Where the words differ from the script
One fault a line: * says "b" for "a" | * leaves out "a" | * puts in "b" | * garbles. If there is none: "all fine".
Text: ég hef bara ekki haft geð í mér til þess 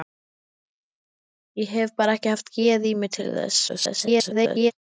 * garbles